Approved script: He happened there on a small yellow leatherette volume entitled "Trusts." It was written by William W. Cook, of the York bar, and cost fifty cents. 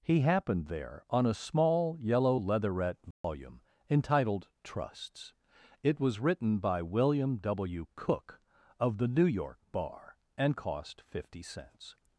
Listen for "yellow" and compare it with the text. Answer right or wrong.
right